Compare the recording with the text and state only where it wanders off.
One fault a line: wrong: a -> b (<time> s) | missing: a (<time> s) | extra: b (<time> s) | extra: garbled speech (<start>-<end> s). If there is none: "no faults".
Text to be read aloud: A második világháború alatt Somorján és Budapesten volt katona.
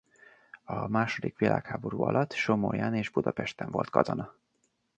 no faults